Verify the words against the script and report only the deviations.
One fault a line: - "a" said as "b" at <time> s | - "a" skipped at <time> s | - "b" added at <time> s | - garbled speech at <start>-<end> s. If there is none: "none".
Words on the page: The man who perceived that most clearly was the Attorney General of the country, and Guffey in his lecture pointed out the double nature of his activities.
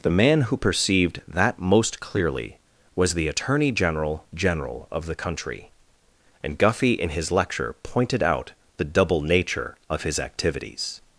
- "General" added at 4.3 s